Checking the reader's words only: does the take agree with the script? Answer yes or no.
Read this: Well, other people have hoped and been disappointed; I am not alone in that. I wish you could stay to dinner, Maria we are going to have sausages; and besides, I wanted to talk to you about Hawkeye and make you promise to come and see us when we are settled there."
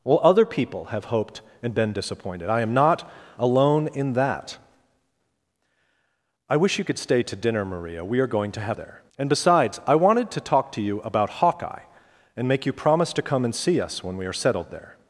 no